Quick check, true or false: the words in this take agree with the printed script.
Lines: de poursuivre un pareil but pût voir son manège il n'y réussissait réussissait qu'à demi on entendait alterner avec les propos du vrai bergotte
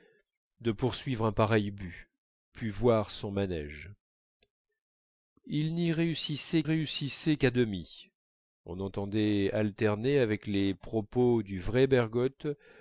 true